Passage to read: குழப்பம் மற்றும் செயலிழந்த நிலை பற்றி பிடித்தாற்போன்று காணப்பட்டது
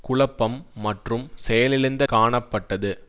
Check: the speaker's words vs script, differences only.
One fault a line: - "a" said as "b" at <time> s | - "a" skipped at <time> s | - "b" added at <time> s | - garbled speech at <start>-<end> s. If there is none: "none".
- "நிலை பற்றி பிடித்தாற்போன்று" skipped at 2.0 s